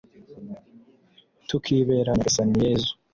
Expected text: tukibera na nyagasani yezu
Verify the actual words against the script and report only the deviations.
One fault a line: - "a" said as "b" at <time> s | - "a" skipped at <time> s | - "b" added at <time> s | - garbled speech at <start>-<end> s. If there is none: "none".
none